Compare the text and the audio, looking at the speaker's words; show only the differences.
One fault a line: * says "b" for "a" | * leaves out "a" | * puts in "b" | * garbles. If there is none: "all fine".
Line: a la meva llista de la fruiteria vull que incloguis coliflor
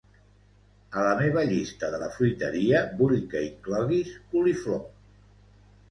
all fine